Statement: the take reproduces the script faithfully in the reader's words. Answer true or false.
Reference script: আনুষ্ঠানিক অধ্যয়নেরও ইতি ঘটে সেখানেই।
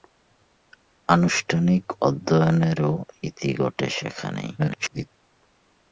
false